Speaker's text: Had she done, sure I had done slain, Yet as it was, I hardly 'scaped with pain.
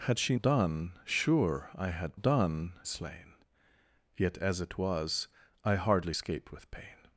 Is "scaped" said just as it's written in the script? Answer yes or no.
yes